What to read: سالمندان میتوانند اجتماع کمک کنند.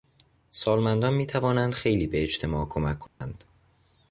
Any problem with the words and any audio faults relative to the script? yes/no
yes